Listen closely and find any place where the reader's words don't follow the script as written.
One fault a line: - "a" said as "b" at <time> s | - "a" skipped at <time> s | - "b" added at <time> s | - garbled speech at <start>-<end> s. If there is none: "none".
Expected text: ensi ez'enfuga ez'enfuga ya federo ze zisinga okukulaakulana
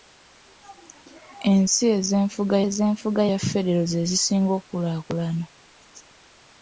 none